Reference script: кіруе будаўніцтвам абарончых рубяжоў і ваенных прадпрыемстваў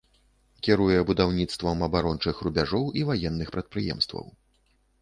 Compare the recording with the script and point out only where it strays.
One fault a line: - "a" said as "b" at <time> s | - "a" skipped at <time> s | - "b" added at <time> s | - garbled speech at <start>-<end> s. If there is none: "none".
none